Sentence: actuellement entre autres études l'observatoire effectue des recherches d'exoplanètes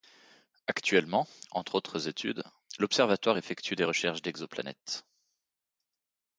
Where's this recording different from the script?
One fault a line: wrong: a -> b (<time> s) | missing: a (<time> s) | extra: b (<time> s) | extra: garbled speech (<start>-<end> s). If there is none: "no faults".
no faults